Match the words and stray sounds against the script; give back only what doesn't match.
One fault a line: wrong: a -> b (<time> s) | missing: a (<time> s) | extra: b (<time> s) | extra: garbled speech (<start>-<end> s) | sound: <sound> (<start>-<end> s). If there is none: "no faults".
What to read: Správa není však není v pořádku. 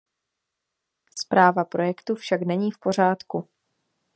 wrong: není -> projektu (1.6 s)